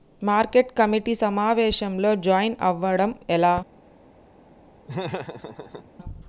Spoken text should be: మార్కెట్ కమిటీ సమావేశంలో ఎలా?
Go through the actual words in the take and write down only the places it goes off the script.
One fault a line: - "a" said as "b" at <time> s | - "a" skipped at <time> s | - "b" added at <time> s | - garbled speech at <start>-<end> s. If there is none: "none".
- "జాయిన్ అవ్వడం" added at 2.2 s